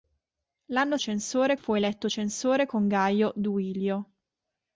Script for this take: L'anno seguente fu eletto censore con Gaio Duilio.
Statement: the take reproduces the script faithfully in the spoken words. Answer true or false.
false